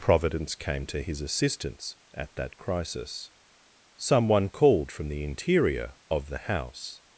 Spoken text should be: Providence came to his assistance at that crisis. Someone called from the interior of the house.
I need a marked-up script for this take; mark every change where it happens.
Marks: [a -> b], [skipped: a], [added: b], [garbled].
Providence came to his assistance at that crisis. Someone called from the interior of the house.